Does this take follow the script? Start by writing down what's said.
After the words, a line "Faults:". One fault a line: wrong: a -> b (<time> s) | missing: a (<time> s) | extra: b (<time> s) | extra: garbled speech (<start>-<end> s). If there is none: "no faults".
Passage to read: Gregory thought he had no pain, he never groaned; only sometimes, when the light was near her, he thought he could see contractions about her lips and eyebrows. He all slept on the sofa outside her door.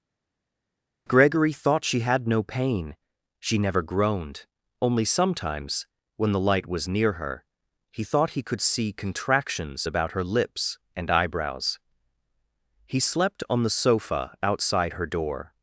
Gregory thought she had no pain, she never groaned; only sometimes, when the light was near her, he thought he could see contractions about her lips and eyebrows. He slept on the sofa outside her door.
Faults:
wrong: he -> she (1.9 s)
wrong: he -> she (3.4 s)
missing: all (13.0 s)